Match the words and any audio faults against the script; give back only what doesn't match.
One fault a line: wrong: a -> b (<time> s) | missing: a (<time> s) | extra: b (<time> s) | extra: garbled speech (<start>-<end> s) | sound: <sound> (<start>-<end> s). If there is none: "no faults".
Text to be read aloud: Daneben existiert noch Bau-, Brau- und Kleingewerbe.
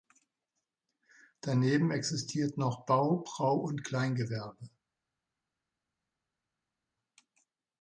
no faults